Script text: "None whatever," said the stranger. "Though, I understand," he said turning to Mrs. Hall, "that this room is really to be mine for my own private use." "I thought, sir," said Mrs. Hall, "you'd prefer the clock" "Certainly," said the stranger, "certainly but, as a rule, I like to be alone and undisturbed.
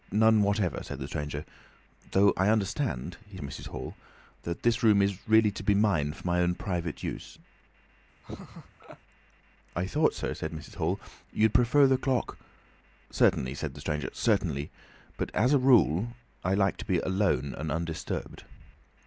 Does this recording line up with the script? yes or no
no